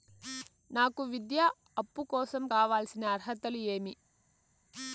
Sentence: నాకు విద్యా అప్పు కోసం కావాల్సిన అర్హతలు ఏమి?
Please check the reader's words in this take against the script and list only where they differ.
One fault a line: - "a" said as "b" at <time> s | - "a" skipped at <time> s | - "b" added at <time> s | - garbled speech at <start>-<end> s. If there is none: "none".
none